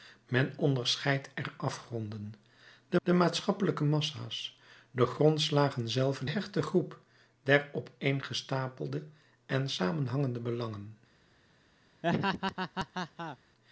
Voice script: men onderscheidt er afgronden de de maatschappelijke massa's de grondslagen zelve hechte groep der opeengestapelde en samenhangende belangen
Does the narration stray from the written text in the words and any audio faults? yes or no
yes